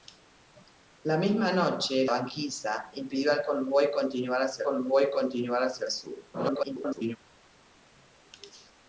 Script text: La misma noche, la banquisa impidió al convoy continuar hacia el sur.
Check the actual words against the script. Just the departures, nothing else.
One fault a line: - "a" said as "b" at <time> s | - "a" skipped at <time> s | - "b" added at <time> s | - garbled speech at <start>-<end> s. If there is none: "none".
- "la" skipped at 2.1 s
- "convoy continuar hacia" added at 4.6 s
- garbled speech at 6.3-7.2 s